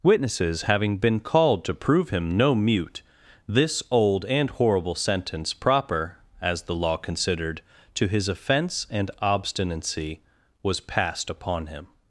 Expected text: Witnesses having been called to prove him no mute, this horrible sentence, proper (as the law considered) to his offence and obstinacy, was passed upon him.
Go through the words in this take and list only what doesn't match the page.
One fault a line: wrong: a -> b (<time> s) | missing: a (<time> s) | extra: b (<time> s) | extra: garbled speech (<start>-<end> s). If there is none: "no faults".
extra: old and (3.9 s)